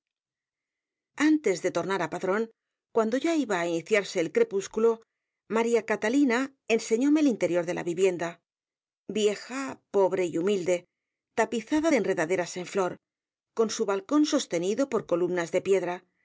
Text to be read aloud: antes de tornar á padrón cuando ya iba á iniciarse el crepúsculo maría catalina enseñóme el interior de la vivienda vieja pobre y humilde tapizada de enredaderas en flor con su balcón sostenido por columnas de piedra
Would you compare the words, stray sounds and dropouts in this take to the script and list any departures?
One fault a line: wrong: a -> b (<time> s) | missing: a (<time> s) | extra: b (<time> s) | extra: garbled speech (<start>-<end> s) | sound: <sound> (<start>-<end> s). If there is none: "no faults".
no faults